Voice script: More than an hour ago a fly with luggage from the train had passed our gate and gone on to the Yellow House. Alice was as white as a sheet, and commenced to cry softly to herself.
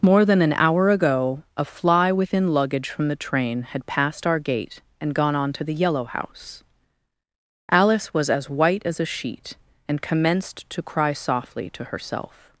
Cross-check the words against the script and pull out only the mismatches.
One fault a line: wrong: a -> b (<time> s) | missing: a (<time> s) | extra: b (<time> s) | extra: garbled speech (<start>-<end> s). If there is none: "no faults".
wrong: with -> within (2.1 s)